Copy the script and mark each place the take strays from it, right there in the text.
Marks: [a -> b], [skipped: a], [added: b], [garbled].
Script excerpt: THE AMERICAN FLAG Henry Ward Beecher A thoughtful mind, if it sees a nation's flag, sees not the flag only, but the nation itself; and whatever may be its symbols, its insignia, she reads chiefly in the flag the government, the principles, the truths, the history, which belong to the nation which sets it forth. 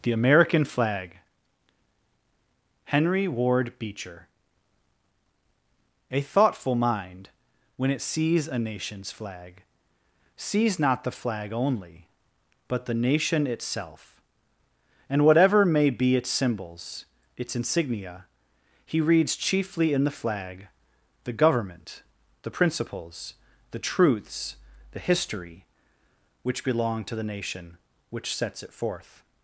THE AMERICAN FLAG Henry Ward Beecher A thoughtful mind, [if -> when] it sees a nation's flag, sees not the flag only, but the nation itself; and whatever may be its symbols, its insignia, [she -> he] reads chiefly in the flag the government, the principles, the truths, the history, which belong to the nation which sets it forth.